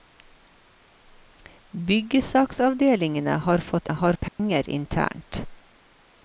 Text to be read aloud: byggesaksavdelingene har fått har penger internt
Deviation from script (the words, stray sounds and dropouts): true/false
true